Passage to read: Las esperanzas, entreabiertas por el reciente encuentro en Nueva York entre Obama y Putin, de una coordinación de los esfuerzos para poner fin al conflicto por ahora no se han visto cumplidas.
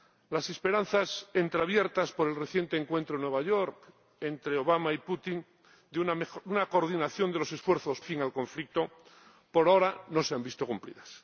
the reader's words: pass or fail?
fail